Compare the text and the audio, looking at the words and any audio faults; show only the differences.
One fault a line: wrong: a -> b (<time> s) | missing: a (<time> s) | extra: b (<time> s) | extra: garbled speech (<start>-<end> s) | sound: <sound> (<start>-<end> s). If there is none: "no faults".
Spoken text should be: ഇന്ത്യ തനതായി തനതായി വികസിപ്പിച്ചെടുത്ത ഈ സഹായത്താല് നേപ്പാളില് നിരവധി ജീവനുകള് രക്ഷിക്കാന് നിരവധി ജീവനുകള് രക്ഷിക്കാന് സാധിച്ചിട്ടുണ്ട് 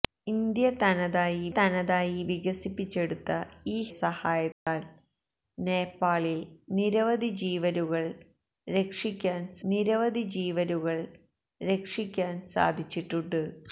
sound: dropout (4.5-4.7 s)